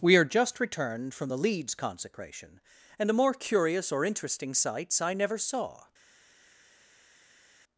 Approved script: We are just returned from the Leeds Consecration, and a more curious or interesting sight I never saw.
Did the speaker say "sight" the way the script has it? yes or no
no